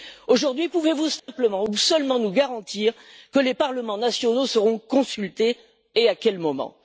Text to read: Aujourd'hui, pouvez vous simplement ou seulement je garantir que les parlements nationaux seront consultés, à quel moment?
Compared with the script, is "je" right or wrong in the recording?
wrong